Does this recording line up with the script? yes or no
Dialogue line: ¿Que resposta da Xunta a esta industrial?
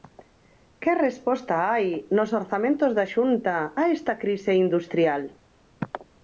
no